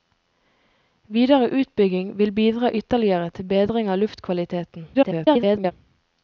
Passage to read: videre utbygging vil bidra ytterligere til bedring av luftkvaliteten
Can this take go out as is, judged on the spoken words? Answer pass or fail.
fail